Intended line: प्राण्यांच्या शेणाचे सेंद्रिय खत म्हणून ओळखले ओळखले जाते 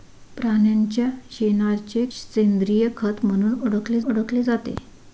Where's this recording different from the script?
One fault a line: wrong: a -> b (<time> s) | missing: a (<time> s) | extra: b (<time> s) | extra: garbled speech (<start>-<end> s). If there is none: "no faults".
no faults